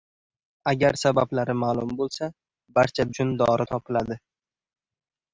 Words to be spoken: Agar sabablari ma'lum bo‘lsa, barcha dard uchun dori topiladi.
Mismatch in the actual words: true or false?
true